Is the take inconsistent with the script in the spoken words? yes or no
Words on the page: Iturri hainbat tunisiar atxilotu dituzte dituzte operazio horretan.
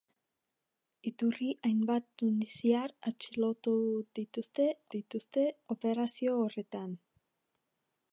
no